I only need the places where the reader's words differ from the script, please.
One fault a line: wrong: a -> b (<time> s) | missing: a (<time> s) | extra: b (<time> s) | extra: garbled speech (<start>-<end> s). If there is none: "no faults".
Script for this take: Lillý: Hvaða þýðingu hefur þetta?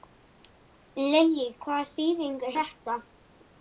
missing: hefur (2.5 s)